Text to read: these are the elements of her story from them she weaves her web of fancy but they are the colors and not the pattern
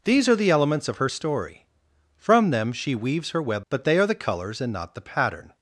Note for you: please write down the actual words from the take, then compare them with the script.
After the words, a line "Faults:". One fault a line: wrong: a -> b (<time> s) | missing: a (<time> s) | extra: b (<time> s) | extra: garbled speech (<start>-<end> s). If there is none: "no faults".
these are the elements of her story from them she weaves her web but they are the colors and not the pattern
Faults:
missing: of fancy (3.7 s)